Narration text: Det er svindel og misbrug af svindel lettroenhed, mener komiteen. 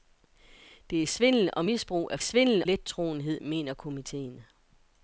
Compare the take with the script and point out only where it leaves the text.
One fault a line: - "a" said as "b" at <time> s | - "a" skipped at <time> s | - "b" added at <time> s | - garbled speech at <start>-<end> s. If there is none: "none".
none